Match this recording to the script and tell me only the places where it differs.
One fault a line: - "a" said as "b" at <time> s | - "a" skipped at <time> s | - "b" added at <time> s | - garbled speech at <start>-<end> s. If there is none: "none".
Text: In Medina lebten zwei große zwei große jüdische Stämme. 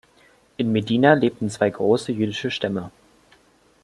- "zwei große" skipped at 2.1 s